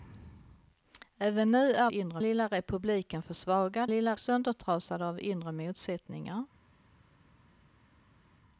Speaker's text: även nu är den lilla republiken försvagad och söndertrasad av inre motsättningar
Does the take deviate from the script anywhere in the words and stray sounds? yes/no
yes